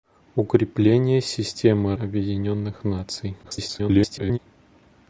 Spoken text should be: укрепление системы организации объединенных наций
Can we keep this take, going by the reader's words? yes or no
no